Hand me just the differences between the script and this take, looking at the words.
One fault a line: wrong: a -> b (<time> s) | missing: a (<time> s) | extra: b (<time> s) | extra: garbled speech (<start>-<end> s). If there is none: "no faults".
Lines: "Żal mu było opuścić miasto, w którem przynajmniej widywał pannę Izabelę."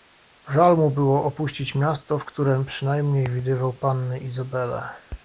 no faults